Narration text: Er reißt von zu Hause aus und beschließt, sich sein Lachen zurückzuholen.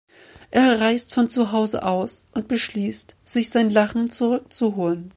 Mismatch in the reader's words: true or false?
false